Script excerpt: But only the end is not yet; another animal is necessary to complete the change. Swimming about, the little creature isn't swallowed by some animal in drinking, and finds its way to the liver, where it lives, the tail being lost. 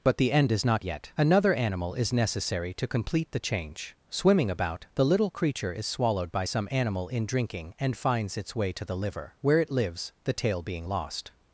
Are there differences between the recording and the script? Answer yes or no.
yes